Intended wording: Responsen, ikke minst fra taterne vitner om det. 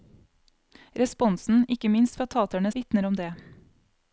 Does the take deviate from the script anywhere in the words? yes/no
no